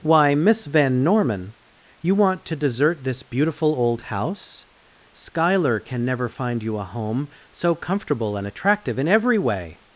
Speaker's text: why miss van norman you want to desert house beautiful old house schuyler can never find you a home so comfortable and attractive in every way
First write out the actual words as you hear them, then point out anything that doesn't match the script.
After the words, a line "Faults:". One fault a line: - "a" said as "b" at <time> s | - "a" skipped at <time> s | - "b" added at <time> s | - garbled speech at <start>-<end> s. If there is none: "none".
why miss van norman you want to desert this beautiful old house schuyler can never find you a home so comfortable and attractive in every way
Faults:
- "house" said as "this" at 3.0 s